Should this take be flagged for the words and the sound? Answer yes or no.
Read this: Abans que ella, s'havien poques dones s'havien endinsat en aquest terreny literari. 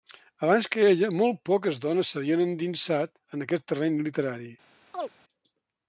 yes